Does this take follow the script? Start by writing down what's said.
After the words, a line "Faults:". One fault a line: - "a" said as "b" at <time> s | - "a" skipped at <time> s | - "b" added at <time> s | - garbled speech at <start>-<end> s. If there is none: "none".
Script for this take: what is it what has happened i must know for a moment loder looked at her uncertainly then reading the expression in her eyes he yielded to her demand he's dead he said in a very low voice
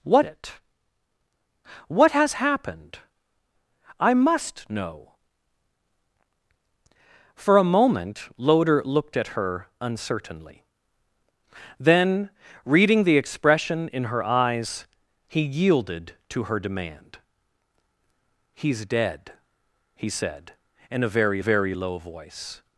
what it what has happened i must know for a moment loder looked at her uncertainly then reading the expression in her eyes he yielded to her demand he's dead he said in a very very low voice
Faults:
- "is" skipped at 0.2 s
- "very" added at 21.4 s